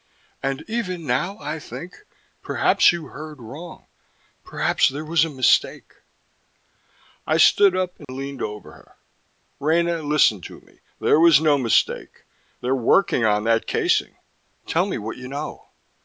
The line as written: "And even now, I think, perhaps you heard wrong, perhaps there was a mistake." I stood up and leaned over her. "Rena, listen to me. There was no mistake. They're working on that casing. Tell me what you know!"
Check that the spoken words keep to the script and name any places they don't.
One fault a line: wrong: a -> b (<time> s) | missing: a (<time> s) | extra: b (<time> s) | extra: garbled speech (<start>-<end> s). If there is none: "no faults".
no faults